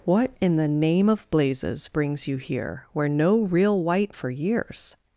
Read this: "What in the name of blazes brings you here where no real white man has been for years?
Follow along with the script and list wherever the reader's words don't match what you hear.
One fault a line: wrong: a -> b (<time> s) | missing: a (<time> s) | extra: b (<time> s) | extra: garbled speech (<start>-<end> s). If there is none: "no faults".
missing: man has been (4.2 s)